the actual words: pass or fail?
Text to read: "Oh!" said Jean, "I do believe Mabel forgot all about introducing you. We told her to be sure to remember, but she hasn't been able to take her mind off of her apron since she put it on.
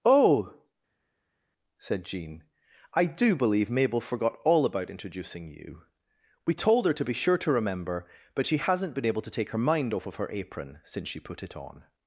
pass